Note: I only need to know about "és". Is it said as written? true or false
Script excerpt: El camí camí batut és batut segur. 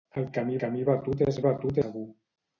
true